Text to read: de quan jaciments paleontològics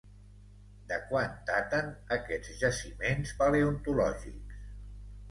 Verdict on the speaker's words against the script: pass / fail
fail